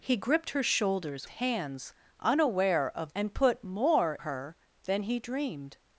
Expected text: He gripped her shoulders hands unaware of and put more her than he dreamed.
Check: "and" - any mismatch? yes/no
no